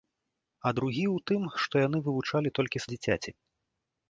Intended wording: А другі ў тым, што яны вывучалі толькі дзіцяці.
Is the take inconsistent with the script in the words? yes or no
no